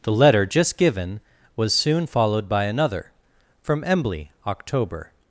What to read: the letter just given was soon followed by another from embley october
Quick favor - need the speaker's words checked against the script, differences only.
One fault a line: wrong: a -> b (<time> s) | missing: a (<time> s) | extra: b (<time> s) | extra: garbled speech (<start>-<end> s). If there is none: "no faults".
no faults